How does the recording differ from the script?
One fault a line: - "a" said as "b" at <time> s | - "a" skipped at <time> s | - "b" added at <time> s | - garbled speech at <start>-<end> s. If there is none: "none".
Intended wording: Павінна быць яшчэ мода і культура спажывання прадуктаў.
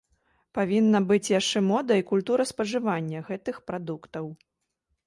- "гэтых" added at 3.3 s